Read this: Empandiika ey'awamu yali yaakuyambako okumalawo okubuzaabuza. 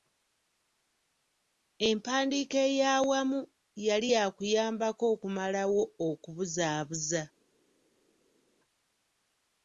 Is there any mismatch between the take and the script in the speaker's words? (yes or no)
no